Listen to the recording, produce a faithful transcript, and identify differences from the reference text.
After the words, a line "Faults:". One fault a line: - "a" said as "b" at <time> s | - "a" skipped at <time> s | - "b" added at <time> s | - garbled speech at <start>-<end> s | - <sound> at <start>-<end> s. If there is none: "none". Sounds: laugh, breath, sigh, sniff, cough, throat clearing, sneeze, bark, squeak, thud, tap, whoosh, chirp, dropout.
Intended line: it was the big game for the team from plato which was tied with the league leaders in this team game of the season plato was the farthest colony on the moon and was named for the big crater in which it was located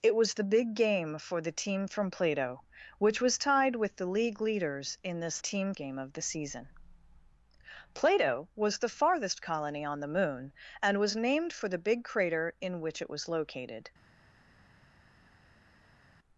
it was the big game for the team from plato which was tied with the league leaders in this team game of the season plato was the farthest colony on the moon and was named for the big crater in which it was located
Faults:
none